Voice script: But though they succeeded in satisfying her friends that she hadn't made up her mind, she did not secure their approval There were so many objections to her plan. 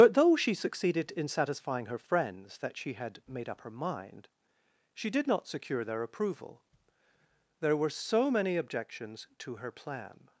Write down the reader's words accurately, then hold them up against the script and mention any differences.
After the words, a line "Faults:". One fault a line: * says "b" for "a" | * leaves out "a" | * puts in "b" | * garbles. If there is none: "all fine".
But though she succeeded in satisfying her friends that she had made up her mind, she did not secure their approval There were so many objections to her plan.
Faults:
* says "she" for "they"
* says "had" for "hadn't"